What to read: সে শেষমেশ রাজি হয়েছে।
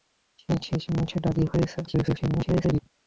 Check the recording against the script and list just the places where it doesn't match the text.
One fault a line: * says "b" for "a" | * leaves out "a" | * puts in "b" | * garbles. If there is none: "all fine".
* garbles